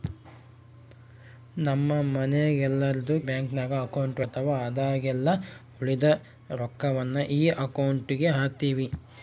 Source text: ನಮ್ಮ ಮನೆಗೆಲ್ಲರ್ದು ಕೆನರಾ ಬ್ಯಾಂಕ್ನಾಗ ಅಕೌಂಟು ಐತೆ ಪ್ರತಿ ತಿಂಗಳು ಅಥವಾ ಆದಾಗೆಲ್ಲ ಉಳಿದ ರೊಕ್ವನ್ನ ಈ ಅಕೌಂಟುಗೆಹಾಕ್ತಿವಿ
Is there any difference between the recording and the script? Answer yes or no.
yes